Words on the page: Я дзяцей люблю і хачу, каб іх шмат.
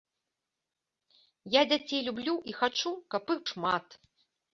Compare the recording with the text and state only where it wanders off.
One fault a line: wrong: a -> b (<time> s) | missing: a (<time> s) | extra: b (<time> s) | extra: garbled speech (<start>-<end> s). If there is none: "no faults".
no faults